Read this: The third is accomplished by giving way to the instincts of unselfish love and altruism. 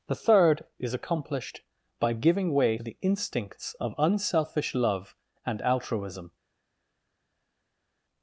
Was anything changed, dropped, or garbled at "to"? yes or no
yes